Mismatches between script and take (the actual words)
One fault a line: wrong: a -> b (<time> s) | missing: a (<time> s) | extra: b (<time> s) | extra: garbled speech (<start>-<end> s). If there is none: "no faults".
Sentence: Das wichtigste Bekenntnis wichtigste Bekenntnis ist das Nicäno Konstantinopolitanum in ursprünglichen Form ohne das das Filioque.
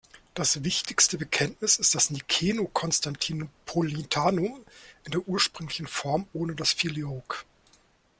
missing: wichtigste Bekenntnis (1.8 s)
extra: der (5.1 s)
missing: das (6.7 s)